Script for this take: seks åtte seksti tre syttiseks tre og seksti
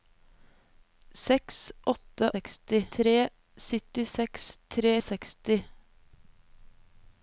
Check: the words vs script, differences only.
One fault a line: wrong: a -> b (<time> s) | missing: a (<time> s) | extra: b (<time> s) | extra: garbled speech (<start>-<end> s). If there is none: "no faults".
no faults